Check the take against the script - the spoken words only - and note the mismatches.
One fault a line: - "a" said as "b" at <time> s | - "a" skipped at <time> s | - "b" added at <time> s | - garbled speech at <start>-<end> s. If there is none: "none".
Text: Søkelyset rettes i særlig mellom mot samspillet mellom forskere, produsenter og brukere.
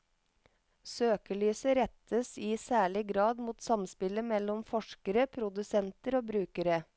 - "mellom" said as "grad" at 3.1 s